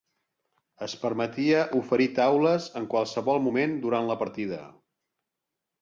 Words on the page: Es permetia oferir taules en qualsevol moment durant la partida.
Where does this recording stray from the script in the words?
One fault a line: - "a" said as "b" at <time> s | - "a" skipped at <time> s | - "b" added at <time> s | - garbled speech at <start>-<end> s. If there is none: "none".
none